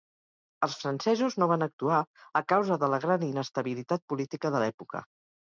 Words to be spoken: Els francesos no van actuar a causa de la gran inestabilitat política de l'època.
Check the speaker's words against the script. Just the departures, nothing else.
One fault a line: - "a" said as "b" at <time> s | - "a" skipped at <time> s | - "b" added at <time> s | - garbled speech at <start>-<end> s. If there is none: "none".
none